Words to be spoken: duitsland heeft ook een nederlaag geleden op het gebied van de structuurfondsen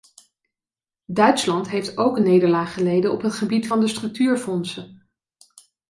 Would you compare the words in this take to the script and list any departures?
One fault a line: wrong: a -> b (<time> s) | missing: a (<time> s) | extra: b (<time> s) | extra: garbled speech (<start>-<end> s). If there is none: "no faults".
no faults